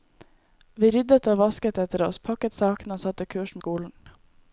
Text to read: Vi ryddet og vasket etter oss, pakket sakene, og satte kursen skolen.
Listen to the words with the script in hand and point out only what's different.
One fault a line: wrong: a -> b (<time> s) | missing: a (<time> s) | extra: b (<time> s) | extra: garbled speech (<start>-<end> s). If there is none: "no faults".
no faults